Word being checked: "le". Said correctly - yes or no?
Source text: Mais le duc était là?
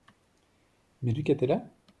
no